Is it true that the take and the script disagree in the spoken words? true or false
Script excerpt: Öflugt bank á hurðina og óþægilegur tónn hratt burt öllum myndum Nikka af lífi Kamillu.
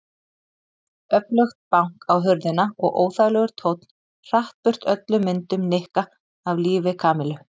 false